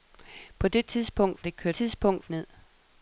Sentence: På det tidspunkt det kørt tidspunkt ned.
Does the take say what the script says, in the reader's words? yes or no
yes